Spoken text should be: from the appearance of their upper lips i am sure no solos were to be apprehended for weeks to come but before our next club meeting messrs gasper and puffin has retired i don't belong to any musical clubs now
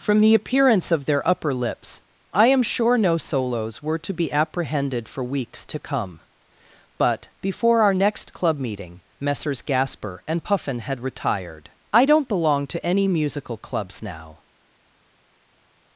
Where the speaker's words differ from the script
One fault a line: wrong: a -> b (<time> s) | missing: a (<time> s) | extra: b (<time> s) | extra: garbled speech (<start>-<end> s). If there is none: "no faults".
wrong: has -> had (10.8 s)